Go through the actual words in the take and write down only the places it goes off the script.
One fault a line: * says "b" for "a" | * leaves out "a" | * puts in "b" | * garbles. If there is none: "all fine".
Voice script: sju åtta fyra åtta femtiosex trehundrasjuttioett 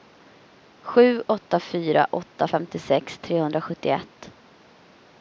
all fine